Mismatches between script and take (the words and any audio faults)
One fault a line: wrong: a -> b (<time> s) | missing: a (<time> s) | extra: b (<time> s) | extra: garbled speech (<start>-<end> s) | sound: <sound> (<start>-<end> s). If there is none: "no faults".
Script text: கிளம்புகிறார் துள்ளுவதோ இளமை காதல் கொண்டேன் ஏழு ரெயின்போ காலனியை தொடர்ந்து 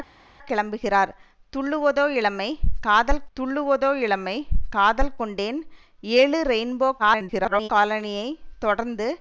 extra: துள்ளுவதோ இளமை காதல் (3.4 s)
extra: garbled speech (7.0-7.7 s)